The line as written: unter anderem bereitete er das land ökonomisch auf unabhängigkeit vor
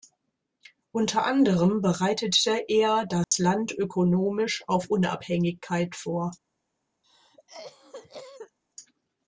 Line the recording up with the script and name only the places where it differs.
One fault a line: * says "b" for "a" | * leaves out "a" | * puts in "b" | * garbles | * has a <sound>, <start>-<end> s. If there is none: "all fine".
* has a dropout, 3.2-3.3 s
* has a cough, 7.0-8.6 s